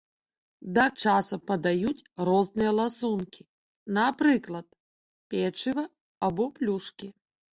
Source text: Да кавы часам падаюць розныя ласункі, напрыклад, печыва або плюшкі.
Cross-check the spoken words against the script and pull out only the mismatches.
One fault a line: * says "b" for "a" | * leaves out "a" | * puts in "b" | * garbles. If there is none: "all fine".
* leaves out "кавы"